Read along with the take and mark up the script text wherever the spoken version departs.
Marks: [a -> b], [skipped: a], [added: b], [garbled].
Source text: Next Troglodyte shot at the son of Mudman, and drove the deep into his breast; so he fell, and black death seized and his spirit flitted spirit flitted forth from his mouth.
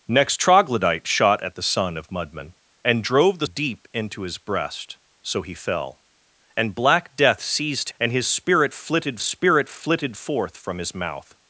Next Troglodyte shot at the son of Mudman, and drove the deep into his breast; so he fell, and black death seized and his spirit flitted spirit flitted forth from his mouth.